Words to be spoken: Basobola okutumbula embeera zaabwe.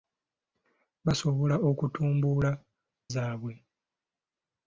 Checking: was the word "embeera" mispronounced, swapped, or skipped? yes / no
yes